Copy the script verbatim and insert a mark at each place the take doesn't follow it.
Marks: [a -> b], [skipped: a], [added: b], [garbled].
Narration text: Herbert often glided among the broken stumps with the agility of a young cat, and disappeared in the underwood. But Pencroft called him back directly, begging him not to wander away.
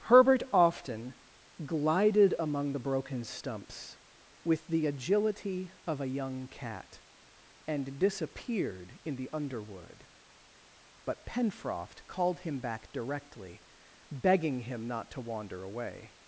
Herbert often glided among the broken stumps with the agility of a young cat, and disappeared in the underwood. But Pencroft called him back directly, begging him not to wander away.